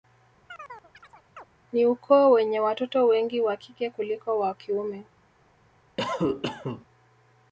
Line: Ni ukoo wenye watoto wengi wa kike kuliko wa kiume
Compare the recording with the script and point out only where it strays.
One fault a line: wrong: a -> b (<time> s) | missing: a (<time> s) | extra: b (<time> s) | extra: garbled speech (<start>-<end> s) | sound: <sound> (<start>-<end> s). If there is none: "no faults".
sound: chirp (0.5-1.4 s)
sound: cough (6.0-6.9 s)